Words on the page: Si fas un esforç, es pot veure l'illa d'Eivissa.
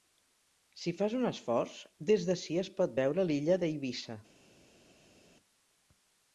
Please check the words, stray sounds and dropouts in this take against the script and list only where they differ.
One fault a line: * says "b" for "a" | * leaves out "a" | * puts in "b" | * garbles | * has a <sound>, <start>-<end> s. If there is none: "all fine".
* puts in "des d'ací"